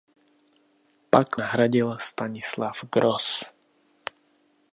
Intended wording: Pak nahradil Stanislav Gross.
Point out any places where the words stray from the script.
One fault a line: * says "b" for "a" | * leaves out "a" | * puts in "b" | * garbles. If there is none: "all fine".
all fine